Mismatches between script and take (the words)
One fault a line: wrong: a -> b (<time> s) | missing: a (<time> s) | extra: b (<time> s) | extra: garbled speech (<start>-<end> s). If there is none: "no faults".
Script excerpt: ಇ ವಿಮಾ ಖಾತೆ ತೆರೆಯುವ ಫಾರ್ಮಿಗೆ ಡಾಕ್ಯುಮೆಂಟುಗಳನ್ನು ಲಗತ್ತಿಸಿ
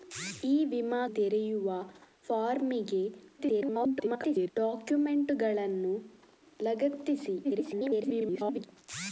missing: ಖಾತೆ (1.0 s)
extra: garbled speech (3.4-4.5 s)
extra: garbled speech (7.4-8.7 s)